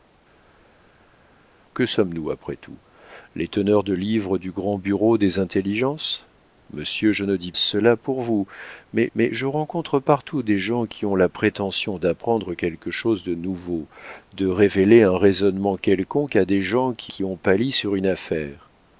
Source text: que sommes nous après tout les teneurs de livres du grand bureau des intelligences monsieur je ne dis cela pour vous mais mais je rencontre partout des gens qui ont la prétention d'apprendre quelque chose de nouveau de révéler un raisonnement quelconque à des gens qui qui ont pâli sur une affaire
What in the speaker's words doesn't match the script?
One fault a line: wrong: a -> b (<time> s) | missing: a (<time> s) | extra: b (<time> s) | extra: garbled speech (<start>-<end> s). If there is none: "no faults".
no faults